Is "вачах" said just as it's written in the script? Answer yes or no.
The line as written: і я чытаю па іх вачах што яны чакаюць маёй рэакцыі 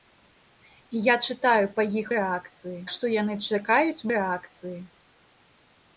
no